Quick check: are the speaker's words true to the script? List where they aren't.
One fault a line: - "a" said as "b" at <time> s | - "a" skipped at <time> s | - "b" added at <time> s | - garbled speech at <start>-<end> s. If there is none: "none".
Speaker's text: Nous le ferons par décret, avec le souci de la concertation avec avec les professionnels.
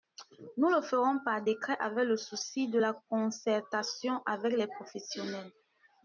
- "avec" skipped at 4.5 s